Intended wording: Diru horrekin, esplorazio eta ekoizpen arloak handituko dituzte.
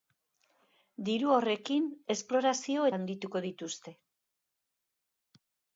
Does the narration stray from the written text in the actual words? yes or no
yes